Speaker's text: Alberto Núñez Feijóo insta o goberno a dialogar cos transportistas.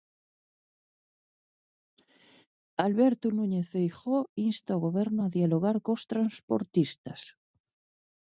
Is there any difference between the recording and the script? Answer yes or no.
no